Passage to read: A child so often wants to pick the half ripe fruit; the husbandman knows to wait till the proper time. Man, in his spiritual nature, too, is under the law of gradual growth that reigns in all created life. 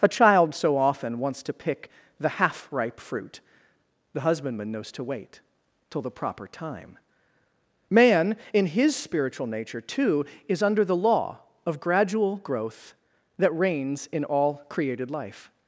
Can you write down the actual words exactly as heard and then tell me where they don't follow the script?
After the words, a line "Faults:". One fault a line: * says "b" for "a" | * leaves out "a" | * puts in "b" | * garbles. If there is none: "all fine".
A child so often wants to pick the half ripe fruit; the husbandman knows to wait till the proper time. Man, in his spiritual nature, too, is under the law of gradual growth that reigns in all created life.
Faults:
all fine